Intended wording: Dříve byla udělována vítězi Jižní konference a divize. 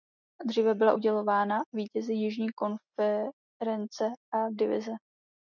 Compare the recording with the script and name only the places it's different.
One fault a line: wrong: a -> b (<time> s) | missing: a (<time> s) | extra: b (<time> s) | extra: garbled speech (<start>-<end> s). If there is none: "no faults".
no faults